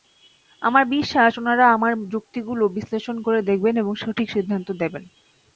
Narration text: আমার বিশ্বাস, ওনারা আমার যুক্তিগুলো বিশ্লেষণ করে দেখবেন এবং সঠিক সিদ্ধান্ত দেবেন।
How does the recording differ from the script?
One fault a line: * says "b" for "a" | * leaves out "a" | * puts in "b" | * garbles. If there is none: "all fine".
all fine